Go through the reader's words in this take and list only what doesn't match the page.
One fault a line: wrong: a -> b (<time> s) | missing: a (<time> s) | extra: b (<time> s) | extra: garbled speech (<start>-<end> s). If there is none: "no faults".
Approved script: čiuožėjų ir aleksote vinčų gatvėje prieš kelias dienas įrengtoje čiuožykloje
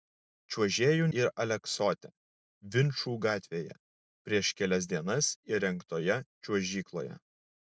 no faults